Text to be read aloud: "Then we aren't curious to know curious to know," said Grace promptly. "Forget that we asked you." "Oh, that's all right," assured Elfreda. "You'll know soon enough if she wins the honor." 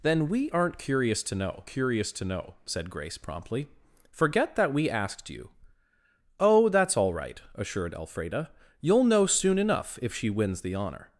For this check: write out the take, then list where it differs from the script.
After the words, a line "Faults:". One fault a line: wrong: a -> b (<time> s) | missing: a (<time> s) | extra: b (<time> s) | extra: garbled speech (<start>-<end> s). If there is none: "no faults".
"Then we aren't curious to know curious to know," said Grace promptly. "Forget that we asked you." "Oh, that's all right," assured Elfreda. "You'll know soon enough if she wins the honor."
Faults:
no faults